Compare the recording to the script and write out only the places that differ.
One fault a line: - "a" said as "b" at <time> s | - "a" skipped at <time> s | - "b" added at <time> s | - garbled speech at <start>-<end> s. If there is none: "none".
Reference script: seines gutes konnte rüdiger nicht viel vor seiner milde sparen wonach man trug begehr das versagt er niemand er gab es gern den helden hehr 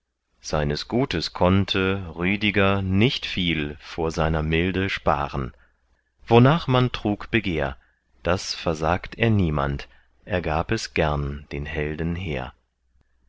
none